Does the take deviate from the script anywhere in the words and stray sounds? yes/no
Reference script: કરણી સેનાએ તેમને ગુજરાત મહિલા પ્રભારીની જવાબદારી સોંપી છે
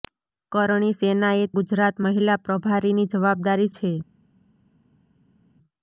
yes